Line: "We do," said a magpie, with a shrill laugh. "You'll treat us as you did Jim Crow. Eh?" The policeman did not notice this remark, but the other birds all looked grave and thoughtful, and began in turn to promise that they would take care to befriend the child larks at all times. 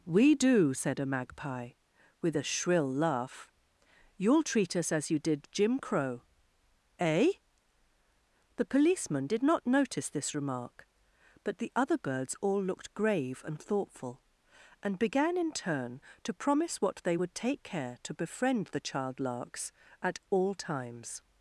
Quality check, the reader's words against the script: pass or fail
fail